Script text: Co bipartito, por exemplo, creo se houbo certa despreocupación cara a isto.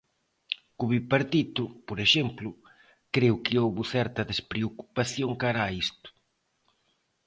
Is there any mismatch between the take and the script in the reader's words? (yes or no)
yes